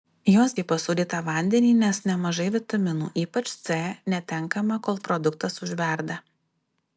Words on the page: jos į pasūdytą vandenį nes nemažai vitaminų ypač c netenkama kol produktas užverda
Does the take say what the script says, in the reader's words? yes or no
yes